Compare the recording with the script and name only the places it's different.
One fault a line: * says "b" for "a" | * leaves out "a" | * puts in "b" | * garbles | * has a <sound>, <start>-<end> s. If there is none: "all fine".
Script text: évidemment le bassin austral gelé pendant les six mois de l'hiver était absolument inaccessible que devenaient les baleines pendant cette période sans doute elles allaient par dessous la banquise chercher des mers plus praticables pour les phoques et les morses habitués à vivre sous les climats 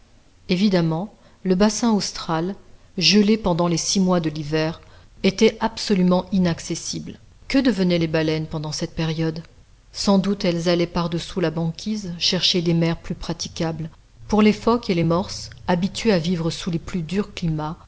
* puts in "plus durs"